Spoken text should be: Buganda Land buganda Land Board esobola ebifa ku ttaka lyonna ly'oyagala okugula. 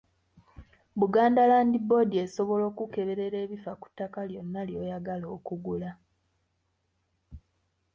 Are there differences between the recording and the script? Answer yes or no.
yes